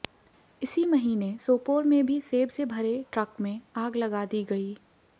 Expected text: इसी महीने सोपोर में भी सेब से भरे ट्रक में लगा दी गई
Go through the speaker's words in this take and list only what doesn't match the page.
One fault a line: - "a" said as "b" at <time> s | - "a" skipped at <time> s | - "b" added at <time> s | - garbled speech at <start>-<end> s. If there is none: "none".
- "आग" added at 3.8 s